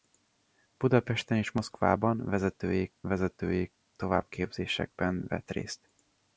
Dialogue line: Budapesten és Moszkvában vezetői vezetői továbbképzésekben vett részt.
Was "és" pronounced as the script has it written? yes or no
yes